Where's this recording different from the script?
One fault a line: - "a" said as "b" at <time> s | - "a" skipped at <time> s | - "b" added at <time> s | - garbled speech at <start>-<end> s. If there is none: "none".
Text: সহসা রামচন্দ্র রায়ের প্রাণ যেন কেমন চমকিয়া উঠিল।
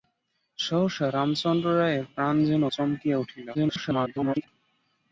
- "কেমন" skipped at 2.6 s
- garbled speech at 3.5-4.5 s